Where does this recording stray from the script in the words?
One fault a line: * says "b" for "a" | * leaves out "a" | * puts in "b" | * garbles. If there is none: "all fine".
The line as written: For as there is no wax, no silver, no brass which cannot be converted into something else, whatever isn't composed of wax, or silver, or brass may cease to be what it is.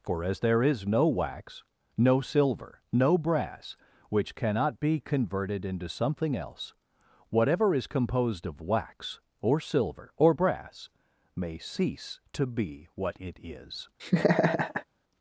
* says "is" for "isn't"